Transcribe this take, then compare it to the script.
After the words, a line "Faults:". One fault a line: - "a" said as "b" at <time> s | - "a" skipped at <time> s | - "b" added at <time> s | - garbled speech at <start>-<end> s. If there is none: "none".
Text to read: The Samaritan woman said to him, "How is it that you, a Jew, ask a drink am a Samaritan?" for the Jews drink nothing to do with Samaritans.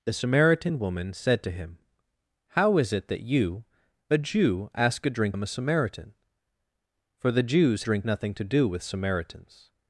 The Samaritan woman said to him, "How is it that you, a Jew, ask a drink am a Samaritan?" for the Jews drink nothing to do with Samaritans.
Faults:
none